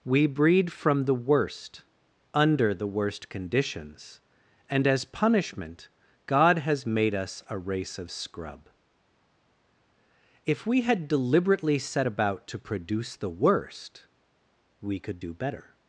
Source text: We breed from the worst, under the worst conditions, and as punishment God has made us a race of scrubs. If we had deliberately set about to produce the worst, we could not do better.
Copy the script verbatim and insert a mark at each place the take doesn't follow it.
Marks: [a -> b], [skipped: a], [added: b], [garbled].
We breed from the worst, under the worst conditions, and as punishment God has made us a race of [scrubs. -> scrub] If we had deliberately set about to produce the worst, we could [skipped: not] do better.